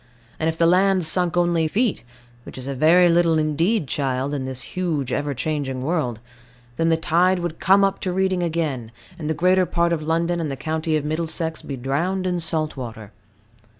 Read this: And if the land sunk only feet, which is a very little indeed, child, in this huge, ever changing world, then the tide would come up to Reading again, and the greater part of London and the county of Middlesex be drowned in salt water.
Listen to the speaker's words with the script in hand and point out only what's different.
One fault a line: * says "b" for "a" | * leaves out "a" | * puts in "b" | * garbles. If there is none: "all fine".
all fine